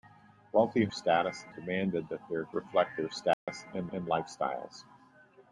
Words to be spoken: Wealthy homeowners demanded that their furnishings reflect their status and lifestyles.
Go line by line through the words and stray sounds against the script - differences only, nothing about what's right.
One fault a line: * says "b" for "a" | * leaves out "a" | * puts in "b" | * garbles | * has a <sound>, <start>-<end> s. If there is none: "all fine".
* says "status" for "homeowners"
* leaves out "furnishings"
* has a dropout, 3.3-3.5 s
* puts in "and"